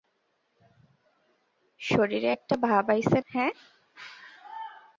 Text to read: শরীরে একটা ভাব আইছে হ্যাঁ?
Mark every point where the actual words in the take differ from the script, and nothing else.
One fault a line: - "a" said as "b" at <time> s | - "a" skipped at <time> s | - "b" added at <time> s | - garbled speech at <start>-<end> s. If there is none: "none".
none